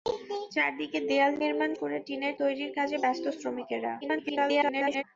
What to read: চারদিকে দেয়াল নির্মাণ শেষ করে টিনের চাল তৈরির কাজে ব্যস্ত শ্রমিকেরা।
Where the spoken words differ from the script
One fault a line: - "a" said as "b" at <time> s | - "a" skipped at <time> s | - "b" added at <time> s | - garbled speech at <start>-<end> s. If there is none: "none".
- "শেষ" skipped at 1.7 s
- "চাল" skipped at 2.3 s
- garbled speech at 4.0-5.0 s